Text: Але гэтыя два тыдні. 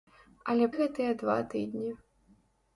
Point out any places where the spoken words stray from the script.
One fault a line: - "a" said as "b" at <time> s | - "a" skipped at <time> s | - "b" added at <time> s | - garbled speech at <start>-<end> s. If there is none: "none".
none